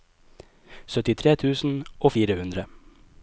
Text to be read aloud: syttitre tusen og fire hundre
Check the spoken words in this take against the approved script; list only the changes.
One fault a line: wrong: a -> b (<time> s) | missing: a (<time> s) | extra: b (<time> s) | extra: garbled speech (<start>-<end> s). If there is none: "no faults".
no faults